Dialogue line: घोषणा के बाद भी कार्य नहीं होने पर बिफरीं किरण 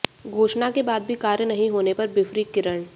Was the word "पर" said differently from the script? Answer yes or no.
no